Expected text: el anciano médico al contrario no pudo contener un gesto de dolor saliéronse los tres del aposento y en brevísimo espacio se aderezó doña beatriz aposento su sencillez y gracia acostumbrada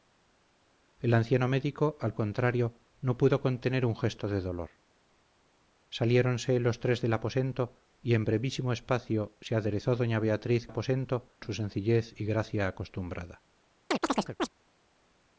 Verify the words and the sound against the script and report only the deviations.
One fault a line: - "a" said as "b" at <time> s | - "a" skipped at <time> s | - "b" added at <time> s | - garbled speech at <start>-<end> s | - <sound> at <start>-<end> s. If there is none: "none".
- chirp at 13.9-14.5 s